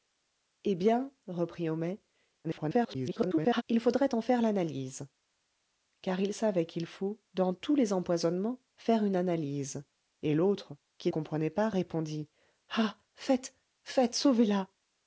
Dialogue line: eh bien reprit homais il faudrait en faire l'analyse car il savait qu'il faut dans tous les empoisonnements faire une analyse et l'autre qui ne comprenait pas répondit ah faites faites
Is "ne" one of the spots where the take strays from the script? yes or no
yes